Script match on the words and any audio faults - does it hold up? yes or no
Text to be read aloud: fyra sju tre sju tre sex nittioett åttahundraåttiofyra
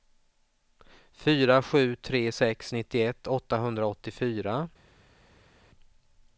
no